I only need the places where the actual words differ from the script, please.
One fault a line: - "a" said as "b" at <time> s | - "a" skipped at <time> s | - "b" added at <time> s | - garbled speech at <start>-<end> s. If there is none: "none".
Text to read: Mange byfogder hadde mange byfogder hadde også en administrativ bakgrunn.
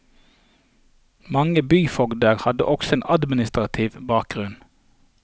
- "mange byfogder hadde" skipped at 2.6 s